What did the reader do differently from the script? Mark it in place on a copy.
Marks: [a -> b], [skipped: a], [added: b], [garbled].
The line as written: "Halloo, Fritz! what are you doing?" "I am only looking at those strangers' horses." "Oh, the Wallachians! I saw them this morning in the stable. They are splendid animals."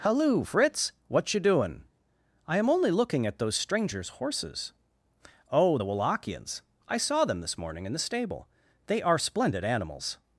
"Halloo, Fritz! what [skipped: are] you doing?" "I am only looking at those strangers' horses." "Oh, the Wallachians! I saw them this morning in the stable. They are splendid animals."